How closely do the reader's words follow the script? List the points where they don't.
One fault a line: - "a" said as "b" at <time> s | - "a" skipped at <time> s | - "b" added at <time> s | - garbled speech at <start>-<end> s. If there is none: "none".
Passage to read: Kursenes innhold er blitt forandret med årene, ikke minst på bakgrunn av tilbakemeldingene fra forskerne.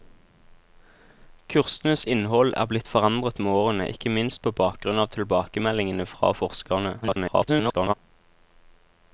- garbled speech at 7.0-7.9 s